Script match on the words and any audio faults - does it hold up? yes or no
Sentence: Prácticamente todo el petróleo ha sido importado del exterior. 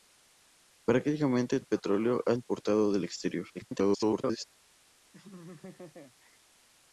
no